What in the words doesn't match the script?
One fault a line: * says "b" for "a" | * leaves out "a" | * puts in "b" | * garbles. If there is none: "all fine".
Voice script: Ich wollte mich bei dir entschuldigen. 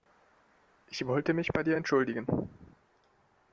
all fine